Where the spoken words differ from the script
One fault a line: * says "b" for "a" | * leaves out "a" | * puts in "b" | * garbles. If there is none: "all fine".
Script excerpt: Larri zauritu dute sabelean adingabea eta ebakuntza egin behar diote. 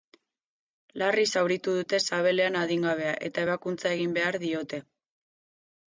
all fine